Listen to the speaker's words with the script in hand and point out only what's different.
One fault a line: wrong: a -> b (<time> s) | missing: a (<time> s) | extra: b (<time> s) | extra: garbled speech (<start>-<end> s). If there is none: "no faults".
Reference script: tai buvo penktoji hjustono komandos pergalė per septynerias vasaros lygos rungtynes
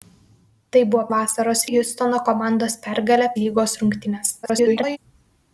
wrong: penktoji -> vasaros (1.2 s)
missing: per septynerias vasaros (3.3 s)
extra: garbled speech (4.4-5.0 s)